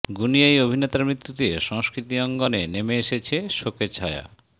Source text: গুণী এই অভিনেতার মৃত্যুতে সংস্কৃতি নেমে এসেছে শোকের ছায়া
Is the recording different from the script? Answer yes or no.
yes